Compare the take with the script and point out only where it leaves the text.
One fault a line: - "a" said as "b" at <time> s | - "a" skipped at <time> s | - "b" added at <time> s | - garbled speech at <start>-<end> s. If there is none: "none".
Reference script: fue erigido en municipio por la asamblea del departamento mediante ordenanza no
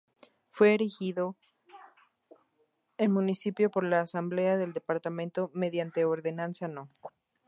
none